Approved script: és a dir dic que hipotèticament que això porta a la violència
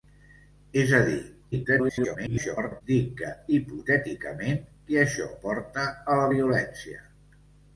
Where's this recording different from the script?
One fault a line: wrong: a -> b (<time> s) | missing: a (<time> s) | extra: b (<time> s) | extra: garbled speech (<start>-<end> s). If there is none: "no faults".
extra: garbled speech (1.5-2.8 s)